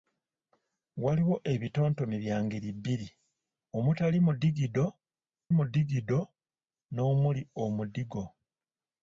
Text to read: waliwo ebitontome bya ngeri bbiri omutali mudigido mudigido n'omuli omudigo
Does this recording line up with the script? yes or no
yes